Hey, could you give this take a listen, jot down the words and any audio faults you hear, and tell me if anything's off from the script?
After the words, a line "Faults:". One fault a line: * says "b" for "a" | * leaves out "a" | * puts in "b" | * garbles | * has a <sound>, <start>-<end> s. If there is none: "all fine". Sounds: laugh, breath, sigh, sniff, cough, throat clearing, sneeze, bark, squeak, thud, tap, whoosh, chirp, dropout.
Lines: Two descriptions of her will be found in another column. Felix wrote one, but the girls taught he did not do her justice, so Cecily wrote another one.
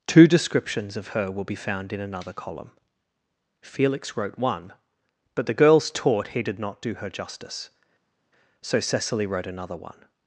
Two descriptions of her will be found in another column. Felix wrote one, but the girls taught he did not do her justice, so Cecily wrote another one.
Faults:
all fine